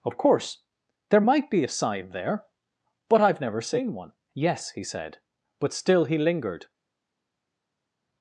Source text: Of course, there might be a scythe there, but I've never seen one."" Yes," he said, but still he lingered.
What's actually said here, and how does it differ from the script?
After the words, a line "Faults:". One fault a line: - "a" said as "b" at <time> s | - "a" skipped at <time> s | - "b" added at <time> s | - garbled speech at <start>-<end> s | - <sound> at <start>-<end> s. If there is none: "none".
Of course, there might be a sign there, but I've never seen one."" Yes," he said, but still he lingered.
Faults:
- "scythe" said as "sign" at 1.7 s